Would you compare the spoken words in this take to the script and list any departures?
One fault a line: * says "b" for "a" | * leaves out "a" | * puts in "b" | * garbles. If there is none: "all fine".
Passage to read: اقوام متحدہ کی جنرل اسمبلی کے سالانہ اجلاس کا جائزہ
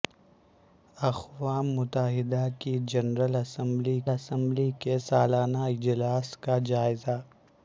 * puts in "اسمبلی"